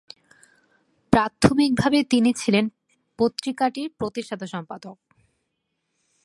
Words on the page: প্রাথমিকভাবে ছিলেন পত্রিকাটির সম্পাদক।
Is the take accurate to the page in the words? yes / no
no